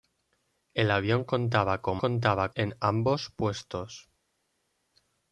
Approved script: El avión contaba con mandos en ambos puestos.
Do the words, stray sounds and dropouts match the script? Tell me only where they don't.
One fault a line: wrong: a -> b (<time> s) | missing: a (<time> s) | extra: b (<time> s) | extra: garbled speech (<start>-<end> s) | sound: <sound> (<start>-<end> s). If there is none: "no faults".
wrong: mandos -> contaba (2.0 s)